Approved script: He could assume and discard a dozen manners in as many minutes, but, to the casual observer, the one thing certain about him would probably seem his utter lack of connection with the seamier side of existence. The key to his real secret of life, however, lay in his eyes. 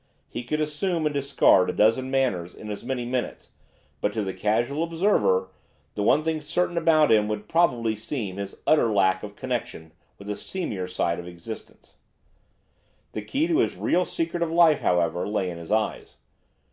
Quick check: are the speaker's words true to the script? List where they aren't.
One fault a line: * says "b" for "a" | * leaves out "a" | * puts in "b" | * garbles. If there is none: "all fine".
all fine